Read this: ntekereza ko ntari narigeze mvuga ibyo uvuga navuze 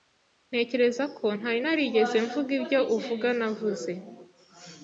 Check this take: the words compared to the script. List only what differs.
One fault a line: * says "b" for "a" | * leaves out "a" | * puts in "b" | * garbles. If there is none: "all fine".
all fine